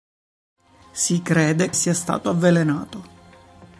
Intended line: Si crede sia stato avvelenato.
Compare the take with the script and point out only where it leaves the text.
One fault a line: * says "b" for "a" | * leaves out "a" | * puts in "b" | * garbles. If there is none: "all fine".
all fine